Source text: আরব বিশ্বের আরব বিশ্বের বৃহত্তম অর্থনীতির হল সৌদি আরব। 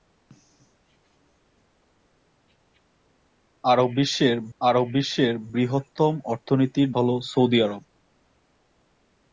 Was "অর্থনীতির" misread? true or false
false